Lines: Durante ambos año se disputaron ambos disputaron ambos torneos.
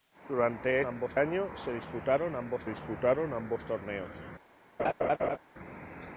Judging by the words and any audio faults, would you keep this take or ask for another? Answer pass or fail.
fail